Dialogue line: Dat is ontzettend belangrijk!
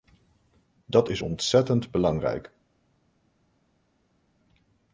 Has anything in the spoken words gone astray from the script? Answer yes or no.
no